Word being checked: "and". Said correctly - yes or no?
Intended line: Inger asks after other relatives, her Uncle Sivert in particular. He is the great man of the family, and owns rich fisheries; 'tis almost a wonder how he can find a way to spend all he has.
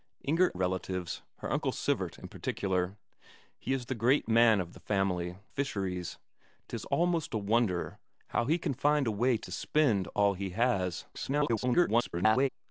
no